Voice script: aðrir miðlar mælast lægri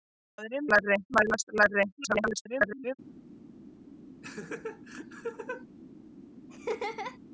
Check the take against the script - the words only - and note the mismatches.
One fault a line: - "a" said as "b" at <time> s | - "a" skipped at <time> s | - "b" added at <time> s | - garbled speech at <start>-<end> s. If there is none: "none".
- "miðlar" said as "lægri" at 0.7 s
- garbled speech at 2.0-3.0 s